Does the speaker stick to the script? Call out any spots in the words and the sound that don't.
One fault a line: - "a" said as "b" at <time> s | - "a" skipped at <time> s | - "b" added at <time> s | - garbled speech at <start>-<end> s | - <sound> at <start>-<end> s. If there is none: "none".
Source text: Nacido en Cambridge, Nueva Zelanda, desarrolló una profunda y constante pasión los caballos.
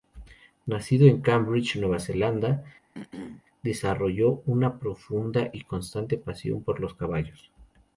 - throat clearing at 2.9-3.4 s
- "por" added at 6.6 s